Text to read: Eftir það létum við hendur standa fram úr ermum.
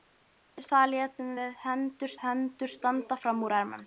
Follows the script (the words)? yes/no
no